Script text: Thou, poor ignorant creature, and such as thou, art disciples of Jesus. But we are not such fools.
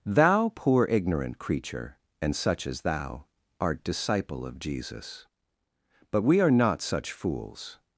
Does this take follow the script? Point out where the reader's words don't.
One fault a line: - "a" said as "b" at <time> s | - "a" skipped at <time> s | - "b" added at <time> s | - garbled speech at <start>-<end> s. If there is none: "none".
- "disciples" said as "disciple" at 3.8 s